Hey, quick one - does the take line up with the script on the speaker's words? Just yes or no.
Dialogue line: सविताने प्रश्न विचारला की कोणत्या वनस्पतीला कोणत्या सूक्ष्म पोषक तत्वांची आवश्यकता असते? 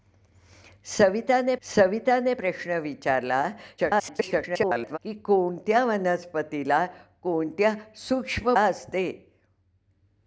no